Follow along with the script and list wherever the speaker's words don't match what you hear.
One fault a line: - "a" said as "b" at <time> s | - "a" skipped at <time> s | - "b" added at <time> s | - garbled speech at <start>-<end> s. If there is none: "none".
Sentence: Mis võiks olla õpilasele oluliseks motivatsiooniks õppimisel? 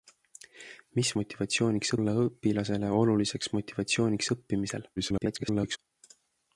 - "võiks" said as "motivatsiooniks" at 1.2 s
- garbled speech at 5.0-5.8 s